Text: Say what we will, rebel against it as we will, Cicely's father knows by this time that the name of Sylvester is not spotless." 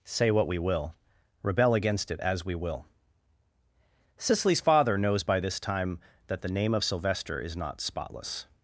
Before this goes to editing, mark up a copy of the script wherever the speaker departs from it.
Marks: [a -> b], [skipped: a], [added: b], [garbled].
Say what we will, rebel against it as we will, Cicely's father knows by this time that the name of Sylvester is not spotless."